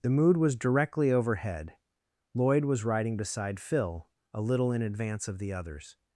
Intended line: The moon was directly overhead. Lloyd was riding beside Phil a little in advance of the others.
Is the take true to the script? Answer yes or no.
no